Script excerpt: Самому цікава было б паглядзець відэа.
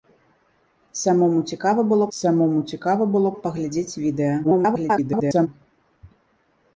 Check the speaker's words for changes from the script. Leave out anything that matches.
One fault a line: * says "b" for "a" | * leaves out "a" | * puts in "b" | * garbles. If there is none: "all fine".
* puts in "самому цікава было"
* garbles